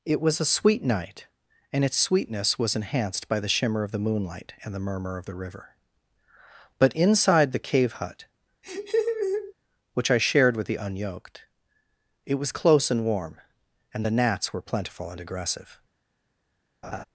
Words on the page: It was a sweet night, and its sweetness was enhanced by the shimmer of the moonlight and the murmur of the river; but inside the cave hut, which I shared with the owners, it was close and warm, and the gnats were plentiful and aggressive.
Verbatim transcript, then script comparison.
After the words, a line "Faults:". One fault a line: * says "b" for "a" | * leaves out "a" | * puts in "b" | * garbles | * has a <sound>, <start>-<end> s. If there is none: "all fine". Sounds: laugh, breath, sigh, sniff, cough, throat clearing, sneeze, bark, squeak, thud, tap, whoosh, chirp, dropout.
It was a sweet night, and its sweetness was enhanced by the shimmer of the moonlight and the murmur of the river; but inside the cave hut, which I shared with the unyoked, it was close and warm, and the gnats were plentiful and aggressive.
Faults:
* has a laugh, 8.6-9.5 s
* says "unyoked" for "owners"
* has a laugh, 16.8-17.0 s